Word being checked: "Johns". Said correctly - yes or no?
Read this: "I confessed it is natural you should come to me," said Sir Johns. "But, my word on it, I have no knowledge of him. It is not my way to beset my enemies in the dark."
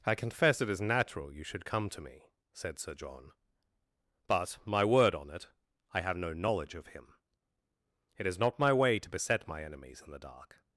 no